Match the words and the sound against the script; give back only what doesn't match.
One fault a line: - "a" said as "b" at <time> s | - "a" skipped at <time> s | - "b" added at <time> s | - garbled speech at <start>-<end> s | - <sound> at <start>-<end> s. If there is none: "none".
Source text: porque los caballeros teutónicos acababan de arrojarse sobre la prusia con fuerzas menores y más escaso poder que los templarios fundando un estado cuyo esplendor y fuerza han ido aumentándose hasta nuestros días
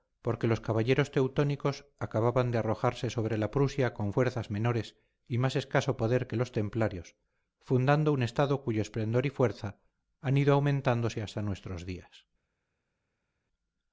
none